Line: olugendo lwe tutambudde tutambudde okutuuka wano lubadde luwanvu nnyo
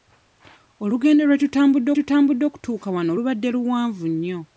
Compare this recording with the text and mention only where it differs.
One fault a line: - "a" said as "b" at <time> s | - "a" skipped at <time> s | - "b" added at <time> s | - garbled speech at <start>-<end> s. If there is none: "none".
none